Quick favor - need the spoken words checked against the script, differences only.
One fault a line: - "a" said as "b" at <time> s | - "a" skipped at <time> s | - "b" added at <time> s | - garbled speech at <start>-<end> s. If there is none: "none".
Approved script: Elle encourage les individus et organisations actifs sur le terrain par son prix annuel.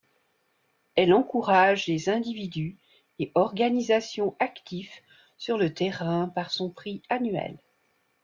none